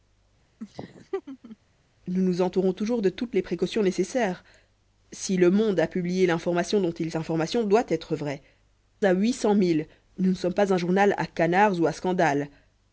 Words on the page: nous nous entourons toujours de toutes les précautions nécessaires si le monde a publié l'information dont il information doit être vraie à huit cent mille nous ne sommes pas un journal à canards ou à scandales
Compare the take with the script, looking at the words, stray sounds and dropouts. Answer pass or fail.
fail